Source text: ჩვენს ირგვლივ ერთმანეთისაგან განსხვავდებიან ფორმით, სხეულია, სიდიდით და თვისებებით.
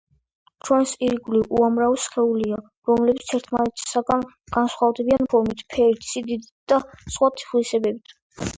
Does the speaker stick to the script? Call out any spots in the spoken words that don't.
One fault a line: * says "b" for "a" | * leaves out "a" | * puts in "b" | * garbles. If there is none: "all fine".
* puts in "უამრავი სხეულია რომლებიც"
* says "ფერით" for "სხეულია"
* puts in "სხვა"